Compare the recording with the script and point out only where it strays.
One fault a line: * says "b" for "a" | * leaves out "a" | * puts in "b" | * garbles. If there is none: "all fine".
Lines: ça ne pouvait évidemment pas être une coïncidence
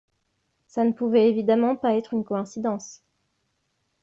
all fine